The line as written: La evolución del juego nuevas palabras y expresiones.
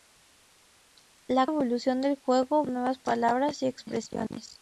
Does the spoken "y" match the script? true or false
true